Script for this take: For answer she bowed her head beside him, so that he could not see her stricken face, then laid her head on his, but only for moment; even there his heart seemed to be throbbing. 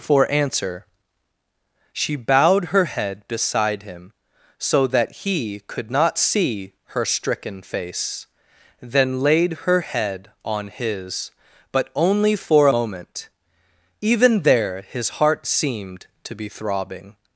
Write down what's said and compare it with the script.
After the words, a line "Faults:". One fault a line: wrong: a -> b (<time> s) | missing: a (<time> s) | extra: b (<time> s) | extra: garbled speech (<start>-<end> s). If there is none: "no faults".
For answer she bowed her head beside him, so that he could not see her stricken face, then laid her head on his, but only for moment; even there his heart seemed to be throbbing.
Faults:
no faults